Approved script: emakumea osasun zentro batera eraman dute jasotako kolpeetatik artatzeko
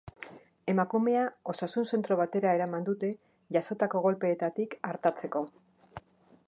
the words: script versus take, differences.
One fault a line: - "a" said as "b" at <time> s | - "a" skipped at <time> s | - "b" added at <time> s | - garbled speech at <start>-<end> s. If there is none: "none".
none